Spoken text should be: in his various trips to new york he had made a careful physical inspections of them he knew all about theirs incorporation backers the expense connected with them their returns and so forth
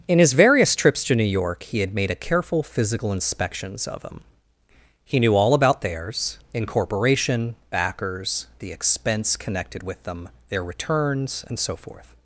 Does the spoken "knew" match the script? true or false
true